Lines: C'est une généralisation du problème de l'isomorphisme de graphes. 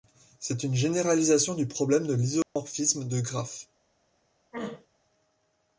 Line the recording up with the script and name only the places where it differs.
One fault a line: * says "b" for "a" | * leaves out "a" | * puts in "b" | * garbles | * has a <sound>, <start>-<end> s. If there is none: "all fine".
* has a dropout, 2.4-2.6 s
* has a throat clearing, 4.5-4.9 s